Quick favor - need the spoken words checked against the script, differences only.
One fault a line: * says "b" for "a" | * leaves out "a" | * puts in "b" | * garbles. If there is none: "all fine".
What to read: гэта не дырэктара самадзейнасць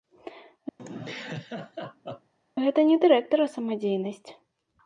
all fine